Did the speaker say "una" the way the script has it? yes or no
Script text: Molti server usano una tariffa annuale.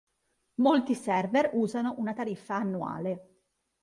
yes